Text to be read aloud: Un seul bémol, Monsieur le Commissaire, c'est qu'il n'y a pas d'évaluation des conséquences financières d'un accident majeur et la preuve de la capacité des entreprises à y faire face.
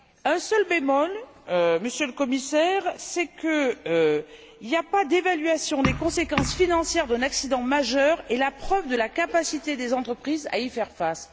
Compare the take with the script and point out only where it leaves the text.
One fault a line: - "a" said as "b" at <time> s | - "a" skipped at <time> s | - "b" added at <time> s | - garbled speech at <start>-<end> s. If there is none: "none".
none